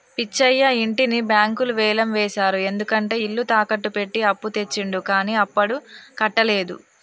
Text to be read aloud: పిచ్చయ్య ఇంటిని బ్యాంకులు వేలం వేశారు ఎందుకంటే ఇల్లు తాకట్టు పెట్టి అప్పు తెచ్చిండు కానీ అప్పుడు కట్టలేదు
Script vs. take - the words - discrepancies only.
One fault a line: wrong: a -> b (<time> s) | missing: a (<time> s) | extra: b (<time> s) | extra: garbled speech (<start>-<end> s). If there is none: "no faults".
no faults